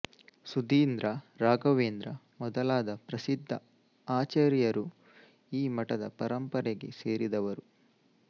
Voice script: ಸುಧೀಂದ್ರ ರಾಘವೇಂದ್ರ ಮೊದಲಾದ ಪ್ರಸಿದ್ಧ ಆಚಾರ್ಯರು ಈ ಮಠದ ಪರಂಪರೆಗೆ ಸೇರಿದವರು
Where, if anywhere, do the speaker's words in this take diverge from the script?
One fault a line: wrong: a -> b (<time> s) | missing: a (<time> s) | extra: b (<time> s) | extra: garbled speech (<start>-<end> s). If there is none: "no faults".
no faults